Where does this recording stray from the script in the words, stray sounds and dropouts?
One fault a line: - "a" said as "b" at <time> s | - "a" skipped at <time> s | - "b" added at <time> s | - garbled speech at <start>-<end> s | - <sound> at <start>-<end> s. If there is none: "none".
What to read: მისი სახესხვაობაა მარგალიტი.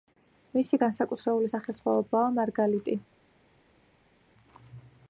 - "განსაკუთრებული" added at 0.8 s